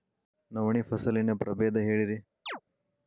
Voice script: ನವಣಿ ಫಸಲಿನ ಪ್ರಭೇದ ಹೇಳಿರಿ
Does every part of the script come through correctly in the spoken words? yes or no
yes